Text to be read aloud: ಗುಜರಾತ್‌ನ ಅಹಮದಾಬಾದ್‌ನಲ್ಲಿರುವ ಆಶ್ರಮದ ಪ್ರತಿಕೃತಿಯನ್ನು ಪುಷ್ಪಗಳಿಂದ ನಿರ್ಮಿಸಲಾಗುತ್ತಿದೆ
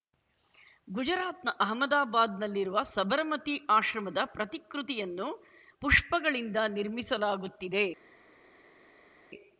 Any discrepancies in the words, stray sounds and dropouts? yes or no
yes